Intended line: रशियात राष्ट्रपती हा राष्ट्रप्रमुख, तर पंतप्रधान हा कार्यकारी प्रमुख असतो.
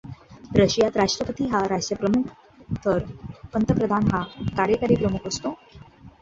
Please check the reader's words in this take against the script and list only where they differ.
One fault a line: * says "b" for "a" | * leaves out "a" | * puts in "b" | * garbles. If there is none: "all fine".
all fine